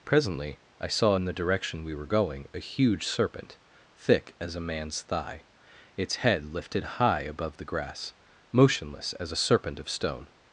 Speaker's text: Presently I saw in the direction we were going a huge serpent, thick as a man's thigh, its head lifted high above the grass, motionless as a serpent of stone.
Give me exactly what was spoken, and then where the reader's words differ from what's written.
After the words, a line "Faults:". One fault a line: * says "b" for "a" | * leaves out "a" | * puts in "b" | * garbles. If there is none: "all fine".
Presently I saw in the direction we were going a huge serpent, thick as a man's thigh, its head lifted high above the grass, motionless as a serpent of stone.
Faults:
all fine